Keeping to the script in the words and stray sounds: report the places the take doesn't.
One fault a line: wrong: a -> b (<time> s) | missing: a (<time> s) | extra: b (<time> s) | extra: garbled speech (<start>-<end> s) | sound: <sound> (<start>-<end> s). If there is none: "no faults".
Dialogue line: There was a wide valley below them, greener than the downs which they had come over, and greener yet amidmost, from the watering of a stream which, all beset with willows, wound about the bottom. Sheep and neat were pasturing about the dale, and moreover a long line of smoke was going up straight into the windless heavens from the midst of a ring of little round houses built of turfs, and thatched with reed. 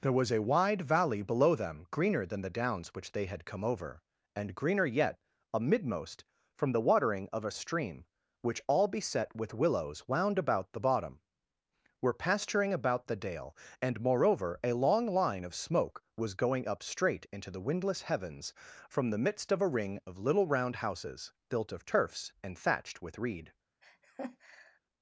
missing: Sheep and neat (11.2 s)
sound: laugh (23.8-24.8 s)